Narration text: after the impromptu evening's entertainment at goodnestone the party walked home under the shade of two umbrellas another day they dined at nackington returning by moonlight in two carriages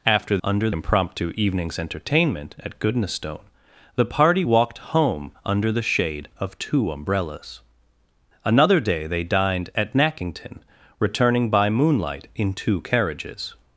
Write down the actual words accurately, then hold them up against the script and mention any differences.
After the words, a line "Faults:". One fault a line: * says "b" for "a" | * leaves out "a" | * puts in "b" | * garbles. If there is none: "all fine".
after under impromptu evening's entertainment at goodnestone the party walked home under the shade of two umbrellas another day they dined at nackington returning by moonlight in two carriages
Faults:
* says "under" for "the"